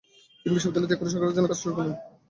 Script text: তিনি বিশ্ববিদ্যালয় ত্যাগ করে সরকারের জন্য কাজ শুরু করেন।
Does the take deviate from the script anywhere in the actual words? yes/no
no